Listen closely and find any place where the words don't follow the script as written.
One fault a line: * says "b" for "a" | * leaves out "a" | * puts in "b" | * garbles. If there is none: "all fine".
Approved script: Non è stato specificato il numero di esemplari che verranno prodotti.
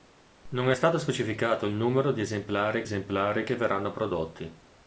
* puts in "esemplari"